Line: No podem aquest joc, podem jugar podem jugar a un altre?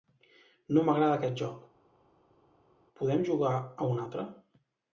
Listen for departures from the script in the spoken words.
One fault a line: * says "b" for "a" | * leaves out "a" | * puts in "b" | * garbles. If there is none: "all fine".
* says "m'agrada" for "podem"
* leaves out "podem jugar"